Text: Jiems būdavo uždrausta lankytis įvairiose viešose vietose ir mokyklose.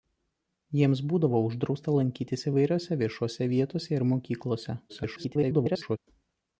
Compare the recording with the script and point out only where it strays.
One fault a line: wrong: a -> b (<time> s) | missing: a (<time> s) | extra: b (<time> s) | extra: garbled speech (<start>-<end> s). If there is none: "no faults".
extra: garbled speech (4.9-6.0 s)